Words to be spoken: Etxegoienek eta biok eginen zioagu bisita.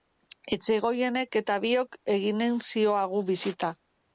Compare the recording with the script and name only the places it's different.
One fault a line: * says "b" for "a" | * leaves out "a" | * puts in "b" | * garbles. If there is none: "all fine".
all fine